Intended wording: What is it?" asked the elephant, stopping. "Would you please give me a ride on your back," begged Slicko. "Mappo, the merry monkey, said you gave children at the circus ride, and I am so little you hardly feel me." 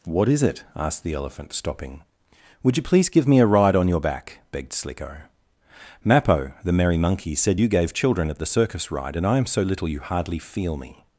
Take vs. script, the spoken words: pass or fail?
pass